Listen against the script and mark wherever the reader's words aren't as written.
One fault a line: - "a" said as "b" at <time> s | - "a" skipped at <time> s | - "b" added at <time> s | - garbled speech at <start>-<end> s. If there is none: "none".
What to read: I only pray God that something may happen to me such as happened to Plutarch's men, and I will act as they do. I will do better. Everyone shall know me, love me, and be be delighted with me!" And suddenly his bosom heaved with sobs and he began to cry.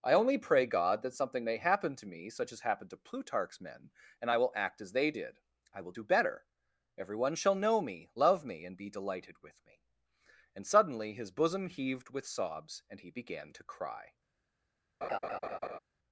- "do" said as "did" at 5.1 s
- "be" skipped at 8.9 s